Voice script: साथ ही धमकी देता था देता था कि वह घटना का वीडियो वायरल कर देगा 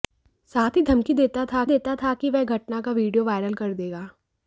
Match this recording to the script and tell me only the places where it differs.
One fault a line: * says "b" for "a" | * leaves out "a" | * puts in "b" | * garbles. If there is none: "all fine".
all fine